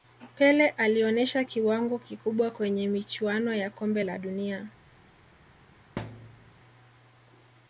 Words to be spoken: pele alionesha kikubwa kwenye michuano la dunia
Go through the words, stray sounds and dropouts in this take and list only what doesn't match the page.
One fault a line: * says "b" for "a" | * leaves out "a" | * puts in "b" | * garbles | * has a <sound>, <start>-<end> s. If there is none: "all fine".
* puts in "kiwango"
* puts in "ya kombe"
* has a thud, 6.0-6.5 s